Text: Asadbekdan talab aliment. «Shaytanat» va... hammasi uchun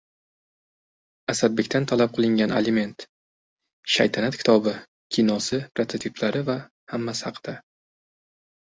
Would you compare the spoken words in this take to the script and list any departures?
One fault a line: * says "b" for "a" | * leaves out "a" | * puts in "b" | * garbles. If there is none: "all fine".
* puts in "qilingan"
* puts in "kitobi kinosi prototiplari"
* says "haqida" for "uchun"